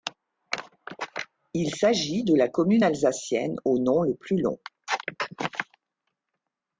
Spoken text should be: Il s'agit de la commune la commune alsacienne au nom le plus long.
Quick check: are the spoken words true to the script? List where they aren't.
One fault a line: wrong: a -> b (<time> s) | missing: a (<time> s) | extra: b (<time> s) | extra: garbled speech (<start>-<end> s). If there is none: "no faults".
missing: la commune (2.8 s)